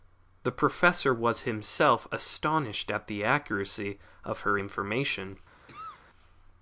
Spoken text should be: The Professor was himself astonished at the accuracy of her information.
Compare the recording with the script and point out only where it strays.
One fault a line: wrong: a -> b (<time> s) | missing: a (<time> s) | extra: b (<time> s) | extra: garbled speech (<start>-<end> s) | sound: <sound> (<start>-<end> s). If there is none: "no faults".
sound: cough (5.7-6.1 s)